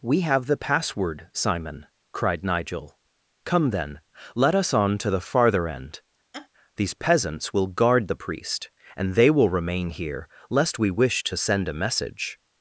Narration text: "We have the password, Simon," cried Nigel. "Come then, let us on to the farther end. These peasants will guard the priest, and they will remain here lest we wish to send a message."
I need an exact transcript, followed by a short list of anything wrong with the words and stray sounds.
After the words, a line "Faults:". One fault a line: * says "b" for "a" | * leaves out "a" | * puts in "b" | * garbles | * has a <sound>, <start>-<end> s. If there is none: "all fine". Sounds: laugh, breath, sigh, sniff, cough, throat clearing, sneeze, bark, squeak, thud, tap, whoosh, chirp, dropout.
"We have the password, Simon," cried Nigel. "Come then, let us on to the farther end. These peasants will guard the priest, and they will remain here lest we wish to send a message."
Faults:
* has a laugh, 6.3-6.5 s